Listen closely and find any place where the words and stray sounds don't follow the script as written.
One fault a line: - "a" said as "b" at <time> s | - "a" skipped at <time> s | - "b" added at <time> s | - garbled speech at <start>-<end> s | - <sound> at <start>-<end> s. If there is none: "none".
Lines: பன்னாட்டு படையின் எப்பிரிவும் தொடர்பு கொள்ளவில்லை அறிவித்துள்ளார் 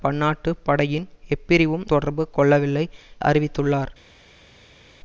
none